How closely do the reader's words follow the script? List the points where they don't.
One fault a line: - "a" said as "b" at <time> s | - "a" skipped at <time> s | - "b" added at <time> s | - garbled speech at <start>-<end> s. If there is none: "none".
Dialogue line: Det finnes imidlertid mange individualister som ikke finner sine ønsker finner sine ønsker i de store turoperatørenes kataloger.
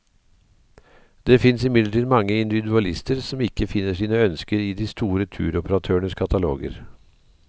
- "finner sine ønsker" skipped at 4.6 s